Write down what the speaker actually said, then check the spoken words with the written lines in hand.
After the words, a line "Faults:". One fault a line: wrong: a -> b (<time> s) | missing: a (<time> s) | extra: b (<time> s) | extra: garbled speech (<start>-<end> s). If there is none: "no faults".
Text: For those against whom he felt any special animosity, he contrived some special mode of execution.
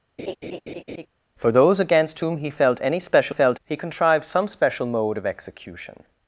For those against whom he felt any special felt, he contrived some special mode of execution.
Faults:
wrong: animosity -> felt (3.3 s)